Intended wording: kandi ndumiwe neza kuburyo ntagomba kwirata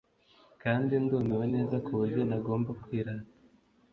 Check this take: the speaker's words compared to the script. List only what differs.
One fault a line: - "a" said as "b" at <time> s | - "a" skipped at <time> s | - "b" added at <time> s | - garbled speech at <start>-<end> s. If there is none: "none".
none